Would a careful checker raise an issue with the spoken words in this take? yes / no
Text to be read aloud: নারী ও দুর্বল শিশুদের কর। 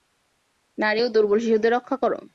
yes